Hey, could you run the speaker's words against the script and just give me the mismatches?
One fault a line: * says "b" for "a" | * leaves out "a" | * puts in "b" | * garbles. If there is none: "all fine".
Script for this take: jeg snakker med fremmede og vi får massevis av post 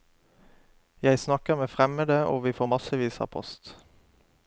all fine